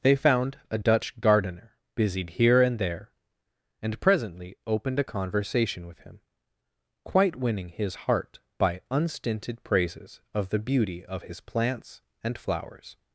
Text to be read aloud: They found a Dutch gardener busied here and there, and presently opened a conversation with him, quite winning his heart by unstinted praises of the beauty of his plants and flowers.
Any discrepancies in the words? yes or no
no